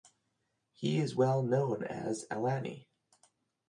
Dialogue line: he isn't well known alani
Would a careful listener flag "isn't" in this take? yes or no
yes